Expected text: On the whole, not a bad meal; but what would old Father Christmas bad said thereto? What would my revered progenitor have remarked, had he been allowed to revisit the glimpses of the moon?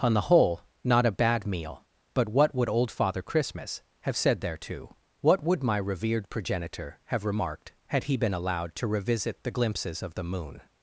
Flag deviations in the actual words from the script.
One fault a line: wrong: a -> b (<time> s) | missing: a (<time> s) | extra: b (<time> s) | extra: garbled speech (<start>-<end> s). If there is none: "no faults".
wrong: bad -> have (4.0 s)